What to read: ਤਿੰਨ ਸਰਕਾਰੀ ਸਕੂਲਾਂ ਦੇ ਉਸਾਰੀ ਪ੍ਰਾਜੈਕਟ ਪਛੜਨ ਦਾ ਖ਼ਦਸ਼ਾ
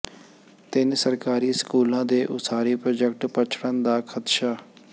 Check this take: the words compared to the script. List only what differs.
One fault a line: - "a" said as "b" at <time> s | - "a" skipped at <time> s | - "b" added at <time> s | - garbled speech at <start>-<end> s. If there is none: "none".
none